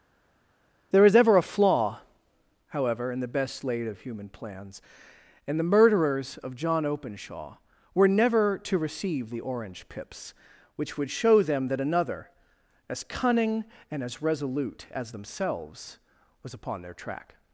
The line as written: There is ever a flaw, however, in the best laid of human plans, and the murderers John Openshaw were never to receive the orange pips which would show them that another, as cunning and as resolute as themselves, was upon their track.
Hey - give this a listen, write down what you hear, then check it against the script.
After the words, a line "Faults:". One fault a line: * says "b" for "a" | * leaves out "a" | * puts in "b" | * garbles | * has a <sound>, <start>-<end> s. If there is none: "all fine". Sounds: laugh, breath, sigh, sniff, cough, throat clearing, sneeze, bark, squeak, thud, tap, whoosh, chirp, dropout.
There is ever a flaw, however, in the best laid of human plans, and the murderers of John Openshaw were never to receive the orange pips which would show them that another, as cunning and as resolute as themselves, was upon their track.
Faults:
* puts in "of"